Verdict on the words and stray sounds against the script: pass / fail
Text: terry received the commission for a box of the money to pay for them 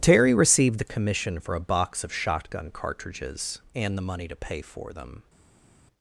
fail